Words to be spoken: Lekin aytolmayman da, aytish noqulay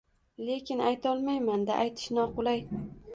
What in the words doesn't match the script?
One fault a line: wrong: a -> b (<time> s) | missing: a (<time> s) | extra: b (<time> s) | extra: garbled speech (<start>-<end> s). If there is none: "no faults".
no faults